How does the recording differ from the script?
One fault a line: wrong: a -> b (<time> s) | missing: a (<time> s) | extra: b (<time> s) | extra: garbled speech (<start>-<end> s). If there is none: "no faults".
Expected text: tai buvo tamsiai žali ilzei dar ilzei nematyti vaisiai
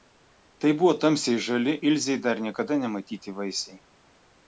wrong: ilzei -> niekada (2.4 s)